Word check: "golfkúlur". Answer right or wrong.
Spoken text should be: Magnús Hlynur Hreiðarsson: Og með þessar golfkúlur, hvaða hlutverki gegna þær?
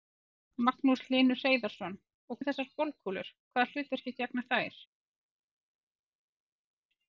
right